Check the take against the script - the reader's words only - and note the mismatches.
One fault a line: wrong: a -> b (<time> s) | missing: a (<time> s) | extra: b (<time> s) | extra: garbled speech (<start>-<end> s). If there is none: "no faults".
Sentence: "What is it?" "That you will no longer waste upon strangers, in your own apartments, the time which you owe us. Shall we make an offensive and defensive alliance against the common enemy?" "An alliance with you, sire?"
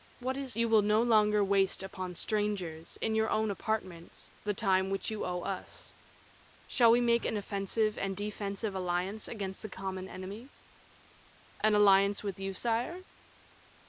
missing: it That (0.6 s)